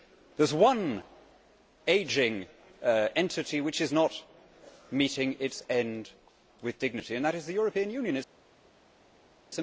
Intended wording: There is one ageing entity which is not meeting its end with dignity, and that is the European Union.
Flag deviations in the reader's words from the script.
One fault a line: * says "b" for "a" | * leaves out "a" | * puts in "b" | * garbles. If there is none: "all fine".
all fine